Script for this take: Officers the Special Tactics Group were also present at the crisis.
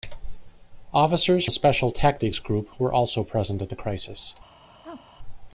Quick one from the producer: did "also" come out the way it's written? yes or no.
yes